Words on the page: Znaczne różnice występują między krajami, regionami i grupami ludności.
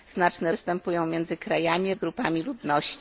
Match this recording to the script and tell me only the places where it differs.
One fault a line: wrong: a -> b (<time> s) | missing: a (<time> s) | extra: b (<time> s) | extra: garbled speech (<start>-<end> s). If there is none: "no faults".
missing: różnice (0.5 s)
missing: regionami (1.9 s)